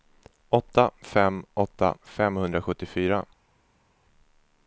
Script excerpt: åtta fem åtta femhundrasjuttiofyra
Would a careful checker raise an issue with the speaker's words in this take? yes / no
no